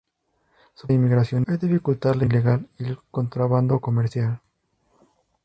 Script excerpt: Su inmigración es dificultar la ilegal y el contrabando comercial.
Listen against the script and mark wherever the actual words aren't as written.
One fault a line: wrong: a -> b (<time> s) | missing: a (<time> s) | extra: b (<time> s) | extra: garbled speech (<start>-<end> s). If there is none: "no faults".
no faults